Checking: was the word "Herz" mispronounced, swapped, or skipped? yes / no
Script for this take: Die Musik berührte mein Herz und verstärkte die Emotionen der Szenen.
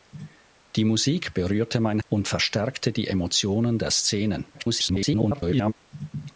yes